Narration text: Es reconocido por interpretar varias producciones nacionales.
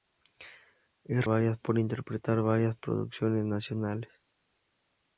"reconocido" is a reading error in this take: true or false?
true